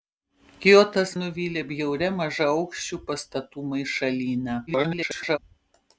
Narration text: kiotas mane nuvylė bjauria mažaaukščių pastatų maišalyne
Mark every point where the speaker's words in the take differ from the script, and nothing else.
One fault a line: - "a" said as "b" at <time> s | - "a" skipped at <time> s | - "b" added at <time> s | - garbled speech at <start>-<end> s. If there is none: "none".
- "mane" skipped at 1.1 s
- garbled speech at 4.7-5.4 s